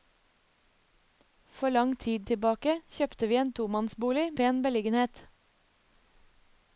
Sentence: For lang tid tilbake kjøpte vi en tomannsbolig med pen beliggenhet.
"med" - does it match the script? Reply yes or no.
no